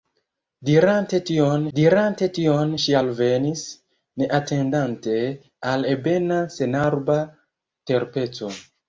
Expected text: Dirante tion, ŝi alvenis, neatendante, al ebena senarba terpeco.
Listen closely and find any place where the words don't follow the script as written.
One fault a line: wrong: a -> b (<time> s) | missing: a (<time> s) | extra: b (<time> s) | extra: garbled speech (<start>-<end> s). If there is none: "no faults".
extra: dirante tion (1.8 s)